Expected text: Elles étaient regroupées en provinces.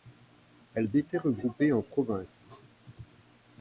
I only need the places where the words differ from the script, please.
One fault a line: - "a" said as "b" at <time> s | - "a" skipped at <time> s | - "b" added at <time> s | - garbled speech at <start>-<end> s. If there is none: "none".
none